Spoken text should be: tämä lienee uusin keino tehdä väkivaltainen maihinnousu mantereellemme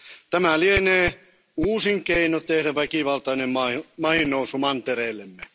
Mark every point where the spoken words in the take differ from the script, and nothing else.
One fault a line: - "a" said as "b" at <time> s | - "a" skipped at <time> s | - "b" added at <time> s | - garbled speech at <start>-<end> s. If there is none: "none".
none